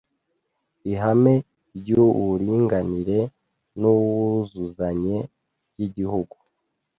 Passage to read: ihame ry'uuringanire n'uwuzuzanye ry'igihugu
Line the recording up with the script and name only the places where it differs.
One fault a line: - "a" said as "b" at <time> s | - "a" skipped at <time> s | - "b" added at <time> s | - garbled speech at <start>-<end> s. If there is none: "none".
none